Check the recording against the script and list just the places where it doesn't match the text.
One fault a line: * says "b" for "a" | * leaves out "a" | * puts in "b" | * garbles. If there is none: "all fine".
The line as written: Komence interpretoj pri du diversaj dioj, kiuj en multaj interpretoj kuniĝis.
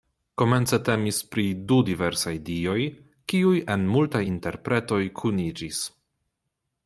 * says "temis" for "interpretoj"